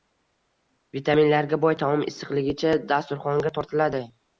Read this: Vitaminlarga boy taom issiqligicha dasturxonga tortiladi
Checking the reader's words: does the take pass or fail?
pass